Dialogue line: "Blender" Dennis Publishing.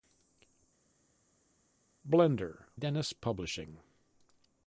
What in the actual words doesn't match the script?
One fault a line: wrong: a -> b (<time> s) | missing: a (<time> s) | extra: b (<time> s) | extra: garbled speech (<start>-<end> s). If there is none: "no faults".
no faults